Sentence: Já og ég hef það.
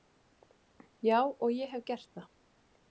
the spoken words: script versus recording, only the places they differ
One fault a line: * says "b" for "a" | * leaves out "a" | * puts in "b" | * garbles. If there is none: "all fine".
* puts in "gert"